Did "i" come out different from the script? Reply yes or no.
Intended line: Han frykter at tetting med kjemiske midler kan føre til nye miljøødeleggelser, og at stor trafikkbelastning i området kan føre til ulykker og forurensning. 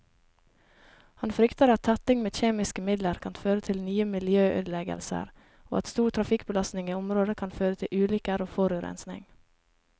no